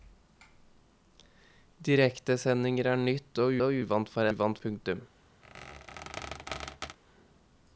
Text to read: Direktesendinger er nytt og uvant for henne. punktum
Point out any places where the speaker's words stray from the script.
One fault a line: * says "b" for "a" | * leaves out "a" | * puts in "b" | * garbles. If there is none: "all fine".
* puts in "og"
* says "uvant" for "henne"